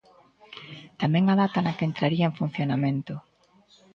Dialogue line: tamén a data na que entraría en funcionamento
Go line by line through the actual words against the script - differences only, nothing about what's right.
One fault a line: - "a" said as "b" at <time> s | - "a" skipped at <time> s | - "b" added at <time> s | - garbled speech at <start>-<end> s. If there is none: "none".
none